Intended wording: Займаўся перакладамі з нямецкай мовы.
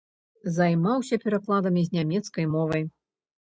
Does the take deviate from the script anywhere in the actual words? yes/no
no